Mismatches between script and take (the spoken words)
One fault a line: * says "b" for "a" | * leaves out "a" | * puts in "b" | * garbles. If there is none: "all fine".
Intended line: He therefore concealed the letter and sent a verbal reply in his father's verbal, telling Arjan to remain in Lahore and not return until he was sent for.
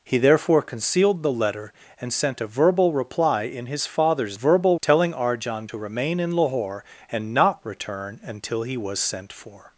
all fine